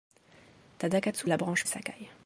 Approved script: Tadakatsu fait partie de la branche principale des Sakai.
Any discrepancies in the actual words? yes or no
yes